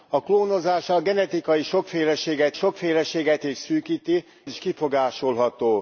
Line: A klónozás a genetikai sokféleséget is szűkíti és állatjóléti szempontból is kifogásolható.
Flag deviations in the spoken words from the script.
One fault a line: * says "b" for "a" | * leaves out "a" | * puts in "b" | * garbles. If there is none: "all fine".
* puts in "sokféleséget"
* leaves out "és állatjóléti szempontból"